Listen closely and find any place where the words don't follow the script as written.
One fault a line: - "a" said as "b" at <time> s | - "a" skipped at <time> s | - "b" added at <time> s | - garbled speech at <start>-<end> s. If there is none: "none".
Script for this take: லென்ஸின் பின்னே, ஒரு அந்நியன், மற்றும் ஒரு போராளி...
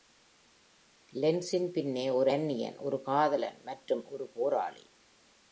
- "ஒரு காதலன்" added at 2.8 s